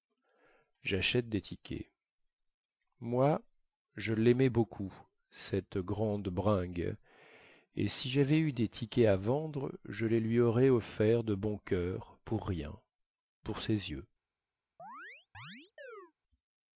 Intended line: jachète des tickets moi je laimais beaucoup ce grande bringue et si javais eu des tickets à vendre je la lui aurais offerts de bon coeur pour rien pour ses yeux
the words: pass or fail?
fail